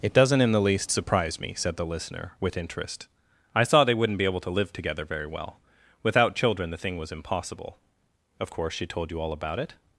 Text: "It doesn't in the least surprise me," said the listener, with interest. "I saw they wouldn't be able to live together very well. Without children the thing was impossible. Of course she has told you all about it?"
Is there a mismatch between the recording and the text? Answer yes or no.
yes